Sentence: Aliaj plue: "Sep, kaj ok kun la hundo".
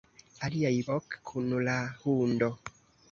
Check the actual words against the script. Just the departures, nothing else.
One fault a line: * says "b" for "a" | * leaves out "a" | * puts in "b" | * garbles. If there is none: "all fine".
* leaves out "plue Sep kaj"